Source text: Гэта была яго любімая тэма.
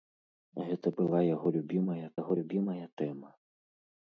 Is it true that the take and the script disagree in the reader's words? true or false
true